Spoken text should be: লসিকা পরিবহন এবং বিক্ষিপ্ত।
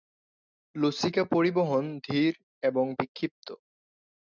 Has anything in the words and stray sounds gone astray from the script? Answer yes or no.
yes